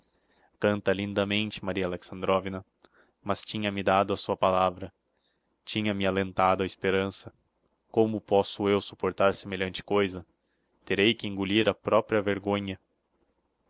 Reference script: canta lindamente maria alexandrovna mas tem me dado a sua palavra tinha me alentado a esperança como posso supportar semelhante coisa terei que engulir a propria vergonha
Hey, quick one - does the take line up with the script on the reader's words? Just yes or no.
no